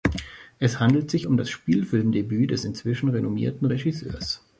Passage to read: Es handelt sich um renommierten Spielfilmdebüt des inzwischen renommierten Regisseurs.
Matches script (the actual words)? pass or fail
fail